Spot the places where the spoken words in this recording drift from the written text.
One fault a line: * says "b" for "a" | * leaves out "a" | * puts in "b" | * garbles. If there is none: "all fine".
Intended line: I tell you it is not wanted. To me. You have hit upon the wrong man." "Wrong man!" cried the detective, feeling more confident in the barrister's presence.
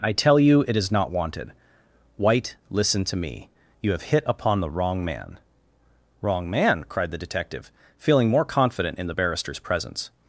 * puts in "White listen"